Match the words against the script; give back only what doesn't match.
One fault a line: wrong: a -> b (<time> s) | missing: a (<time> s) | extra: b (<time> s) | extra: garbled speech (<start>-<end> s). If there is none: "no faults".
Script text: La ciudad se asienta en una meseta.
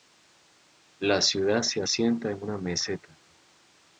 no faults